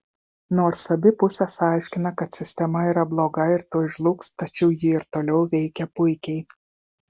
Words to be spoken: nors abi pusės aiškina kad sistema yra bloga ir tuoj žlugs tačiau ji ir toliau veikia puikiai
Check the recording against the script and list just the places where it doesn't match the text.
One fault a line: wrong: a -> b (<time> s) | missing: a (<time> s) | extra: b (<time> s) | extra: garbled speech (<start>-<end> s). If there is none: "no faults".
no faults